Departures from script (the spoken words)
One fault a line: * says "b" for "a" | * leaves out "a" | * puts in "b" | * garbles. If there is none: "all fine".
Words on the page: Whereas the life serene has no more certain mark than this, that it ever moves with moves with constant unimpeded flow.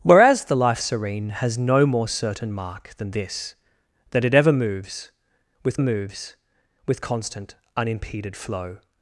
all fine